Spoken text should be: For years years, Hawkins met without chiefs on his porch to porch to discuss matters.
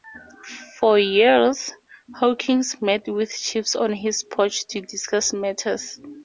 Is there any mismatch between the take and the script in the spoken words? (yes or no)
yes